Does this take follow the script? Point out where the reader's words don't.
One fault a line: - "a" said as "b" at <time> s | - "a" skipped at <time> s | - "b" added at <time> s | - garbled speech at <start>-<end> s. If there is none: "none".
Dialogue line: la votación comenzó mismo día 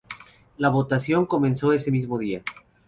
- "ese" added at 1.7 s